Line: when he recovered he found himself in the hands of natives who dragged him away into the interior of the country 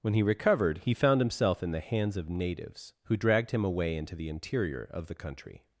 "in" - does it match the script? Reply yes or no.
yes